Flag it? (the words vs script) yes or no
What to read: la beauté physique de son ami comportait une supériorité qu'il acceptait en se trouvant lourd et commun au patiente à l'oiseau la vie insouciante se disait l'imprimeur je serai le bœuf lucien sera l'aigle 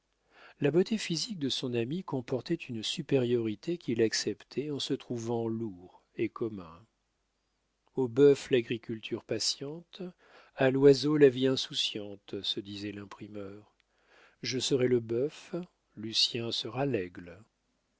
yes